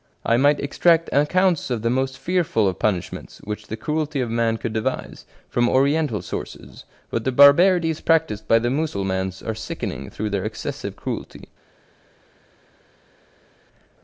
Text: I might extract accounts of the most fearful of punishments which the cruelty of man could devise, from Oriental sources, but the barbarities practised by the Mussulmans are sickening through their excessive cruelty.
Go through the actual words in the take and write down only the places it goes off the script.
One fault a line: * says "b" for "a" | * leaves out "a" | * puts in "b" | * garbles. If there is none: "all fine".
all fine